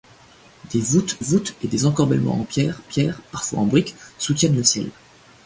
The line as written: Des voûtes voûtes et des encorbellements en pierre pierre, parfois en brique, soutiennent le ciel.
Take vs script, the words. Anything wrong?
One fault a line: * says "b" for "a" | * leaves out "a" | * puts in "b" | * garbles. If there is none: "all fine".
all fine